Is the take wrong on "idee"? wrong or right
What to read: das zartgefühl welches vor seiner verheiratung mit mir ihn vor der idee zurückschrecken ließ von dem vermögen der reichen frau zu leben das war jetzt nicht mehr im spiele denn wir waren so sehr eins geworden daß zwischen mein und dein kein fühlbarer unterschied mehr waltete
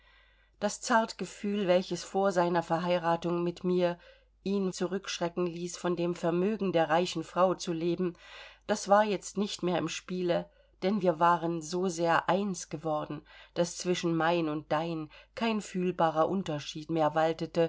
wrong